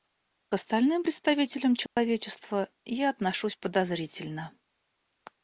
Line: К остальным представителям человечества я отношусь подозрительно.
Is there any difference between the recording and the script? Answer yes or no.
no